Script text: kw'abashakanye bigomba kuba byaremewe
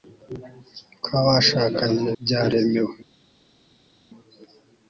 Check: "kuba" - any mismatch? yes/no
yes